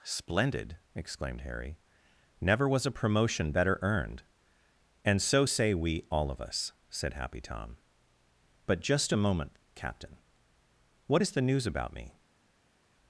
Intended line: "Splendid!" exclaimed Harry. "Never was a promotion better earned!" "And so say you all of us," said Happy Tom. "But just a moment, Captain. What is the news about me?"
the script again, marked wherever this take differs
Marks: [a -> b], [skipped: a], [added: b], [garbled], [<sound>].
"Splendid!" exclaimed Harry. "Never was a promotion better earned!" "And so say [you -> we] all of us," said Happy Tom. "But just a moment, Captain. What is the news about me?"